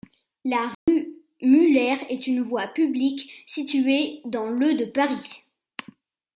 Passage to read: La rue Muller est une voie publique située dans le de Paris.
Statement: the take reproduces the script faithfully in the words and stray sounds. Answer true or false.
false